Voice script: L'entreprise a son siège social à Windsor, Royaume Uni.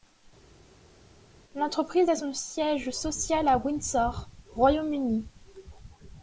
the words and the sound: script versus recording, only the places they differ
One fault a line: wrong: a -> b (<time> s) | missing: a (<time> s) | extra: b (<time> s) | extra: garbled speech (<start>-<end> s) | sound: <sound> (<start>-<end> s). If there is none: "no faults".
no faults